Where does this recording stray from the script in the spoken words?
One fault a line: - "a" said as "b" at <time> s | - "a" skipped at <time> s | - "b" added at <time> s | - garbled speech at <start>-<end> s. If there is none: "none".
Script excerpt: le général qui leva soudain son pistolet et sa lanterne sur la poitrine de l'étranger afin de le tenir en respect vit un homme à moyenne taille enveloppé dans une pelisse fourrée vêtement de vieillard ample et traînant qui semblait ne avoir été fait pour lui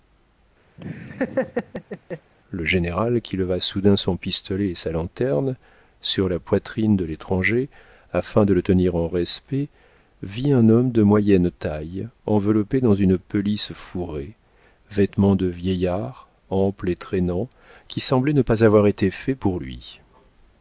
- "à" said as "de" at 10.9 s
- "pas" added at 18.4 s